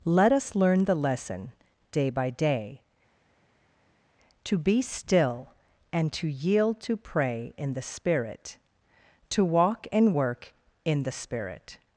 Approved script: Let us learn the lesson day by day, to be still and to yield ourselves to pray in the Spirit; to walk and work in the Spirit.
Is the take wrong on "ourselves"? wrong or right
wrong